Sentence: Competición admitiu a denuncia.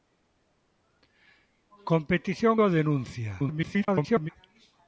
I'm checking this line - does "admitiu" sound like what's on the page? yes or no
no